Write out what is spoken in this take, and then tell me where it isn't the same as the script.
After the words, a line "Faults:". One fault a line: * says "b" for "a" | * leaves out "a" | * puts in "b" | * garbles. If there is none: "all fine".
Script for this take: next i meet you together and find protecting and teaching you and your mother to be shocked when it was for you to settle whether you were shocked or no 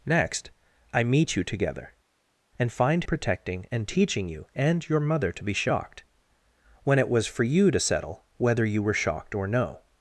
next i meet you together and find protecting and teaching you and your mother to be shocked when it was for you to settle whether you were shocked or no
Faults:
all fine